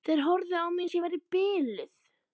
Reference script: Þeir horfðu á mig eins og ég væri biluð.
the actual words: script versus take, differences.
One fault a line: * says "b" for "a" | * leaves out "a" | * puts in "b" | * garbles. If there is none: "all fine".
all fine